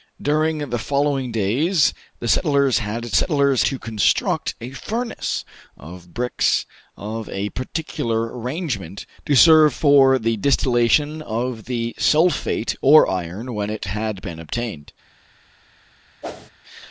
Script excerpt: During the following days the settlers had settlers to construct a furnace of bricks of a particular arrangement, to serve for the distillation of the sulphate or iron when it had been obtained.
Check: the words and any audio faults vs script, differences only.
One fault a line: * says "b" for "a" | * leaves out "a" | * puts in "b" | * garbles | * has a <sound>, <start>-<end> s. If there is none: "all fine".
* has a whoosh, 16.2-16.5 s